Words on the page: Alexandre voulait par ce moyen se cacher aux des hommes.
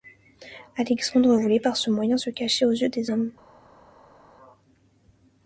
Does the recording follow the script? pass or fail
fail